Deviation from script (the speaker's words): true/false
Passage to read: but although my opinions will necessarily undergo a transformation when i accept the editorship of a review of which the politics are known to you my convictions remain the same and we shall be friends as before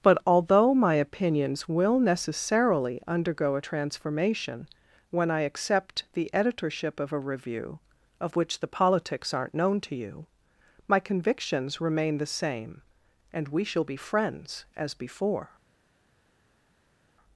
true